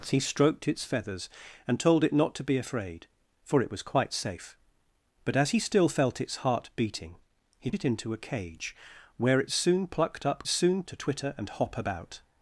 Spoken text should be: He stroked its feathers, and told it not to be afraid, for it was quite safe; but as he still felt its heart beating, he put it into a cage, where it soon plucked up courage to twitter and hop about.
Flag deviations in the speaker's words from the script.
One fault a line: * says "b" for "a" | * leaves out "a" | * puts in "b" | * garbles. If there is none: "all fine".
* leaves out "put"
* says "soon" for "courage"